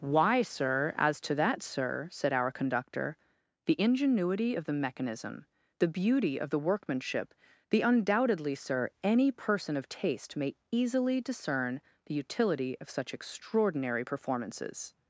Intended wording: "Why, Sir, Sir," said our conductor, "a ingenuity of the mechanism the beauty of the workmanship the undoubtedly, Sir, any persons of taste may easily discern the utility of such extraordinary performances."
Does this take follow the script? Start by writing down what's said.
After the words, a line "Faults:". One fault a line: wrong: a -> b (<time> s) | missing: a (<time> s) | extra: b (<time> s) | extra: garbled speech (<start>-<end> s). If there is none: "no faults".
"Why, Sir, as to that, Sir," said our conductor, "the ingenuity of the mechanism the beauty of the workmanship the undoubtedly, Sir, any person of taste may easily discern the utility of such extraordinary performances."
Faults:
extra: as to that (1.0 s)
wrong: a -> the (3.7 s)
wrong: persons -> person (9.3 s)